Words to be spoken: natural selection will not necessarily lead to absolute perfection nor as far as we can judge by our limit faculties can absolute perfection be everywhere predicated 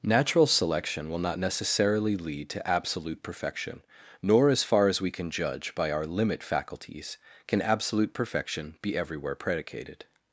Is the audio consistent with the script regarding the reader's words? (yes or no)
yes